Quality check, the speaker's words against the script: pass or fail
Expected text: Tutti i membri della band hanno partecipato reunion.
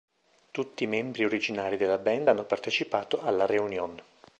fail